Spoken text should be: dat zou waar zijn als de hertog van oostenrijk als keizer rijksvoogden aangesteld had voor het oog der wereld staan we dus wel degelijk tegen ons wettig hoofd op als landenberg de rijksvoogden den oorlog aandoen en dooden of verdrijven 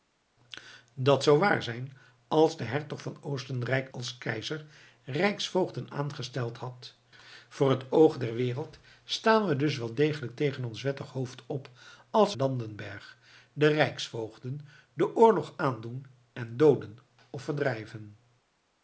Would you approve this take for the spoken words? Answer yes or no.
yes